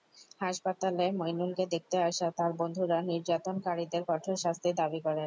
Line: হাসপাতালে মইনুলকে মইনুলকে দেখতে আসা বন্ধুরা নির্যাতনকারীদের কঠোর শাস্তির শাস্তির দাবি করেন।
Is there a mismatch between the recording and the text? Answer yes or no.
yes